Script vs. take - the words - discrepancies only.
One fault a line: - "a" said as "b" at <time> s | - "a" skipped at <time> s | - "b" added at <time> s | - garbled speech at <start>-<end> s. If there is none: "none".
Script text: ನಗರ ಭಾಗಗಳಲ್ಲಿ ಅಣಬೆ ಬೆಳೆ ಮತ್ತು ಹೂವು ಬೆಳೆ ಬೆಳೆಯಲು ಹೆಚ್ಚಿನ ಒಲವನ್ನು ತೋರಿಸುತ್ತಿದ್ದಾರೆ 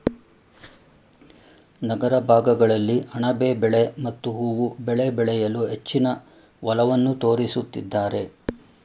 none